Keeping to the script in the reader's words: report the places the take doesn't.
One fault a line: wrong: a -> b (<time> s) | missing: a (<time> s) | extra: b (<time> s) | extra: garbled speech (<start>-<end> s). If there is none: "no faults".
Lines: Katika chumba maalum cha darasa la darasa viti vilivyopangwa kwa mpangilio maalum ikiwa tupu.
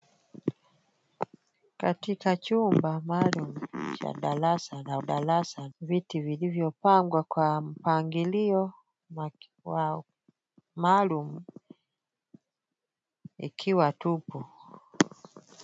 no faults